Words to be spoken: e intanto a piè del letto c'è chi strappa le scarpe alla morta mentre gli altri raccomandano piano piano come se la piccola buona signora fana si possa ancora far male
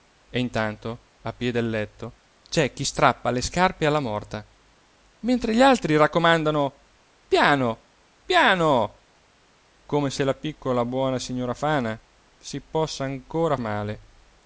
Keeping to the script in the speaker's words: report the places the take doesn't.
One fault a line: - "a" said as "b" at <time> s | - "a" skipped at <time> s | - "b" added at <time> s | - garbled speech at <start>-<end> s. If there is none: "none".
- "far" skipped at 13.6 s